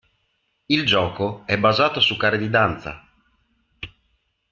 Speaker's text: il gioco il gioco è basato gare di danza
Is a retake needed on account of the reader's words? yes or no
yes